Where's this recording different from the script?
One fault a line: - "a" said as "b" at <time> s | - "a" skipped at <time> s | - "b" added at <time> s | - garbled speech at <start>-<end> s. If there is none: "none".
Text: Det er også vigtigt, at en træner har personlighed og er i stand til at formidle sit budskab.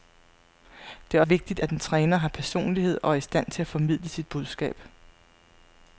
- "også" skipped at 1.2 s